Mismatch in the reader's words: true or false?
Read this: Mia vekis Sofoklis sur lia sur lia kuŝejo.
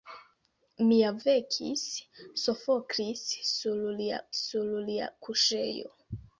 false